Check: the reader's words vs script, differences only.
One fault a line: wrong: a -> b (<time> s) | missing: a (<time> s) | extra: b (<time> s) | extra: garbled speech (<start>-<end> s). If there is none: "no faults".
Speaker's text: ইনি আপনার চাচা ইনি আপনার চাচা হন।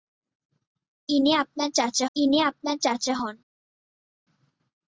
no faults